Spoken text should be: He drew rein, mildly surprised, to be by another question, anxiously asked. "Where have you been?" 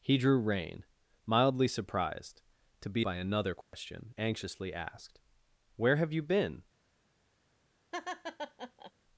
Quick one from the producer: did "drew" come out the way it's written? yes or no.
yes